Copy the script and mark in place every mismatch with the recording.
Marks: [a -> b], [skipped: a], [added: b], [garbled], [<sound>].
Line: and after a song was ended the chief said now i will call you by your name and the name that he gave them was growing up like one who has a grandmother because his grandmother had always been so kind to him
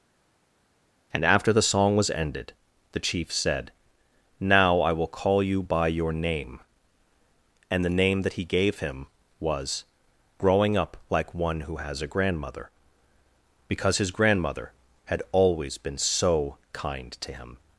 and after [a -> the] song was ended the chief said now i will call you by your name and the name that he gave [them -> him] was growing up like one who has a grandmother because his grandmother had always been so kind to him